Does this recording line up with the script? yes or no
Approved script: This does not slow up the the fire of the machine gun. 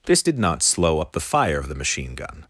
no